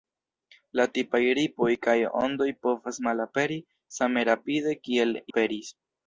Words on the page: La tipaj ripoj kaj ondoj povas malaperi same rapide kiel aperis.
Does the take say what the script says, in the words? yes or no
yes